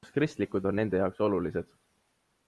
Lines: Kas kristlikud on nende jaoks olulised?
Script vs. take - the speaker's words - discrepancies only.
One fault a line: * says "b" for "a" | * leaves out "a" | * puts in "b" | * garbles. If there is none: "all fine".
all fine